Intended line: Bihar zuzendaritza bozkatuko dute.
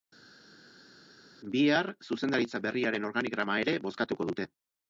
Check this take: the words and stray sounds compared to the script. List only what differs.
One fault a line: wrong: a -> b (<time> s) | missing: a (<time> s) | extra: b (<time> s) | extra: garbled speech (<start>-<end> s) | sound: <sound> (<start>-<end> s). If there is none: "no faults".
extra: berriaren organigrama ere (2.7 s)